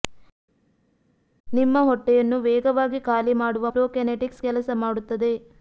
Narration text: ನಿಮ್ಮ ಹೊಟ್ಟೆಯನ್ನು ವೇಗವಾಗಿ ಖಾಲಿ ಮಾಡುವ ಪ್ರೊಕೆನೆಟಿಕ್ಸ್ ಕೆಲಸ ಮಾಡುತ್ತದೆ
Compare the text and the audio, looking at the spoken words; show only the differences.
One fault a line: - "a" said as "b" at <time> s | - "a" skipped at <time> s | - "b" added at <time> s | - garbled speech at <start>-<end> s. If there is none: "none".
none